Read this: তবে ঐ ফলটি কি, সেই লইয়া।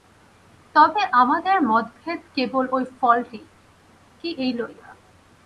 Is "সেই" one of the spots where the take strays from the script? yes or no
yes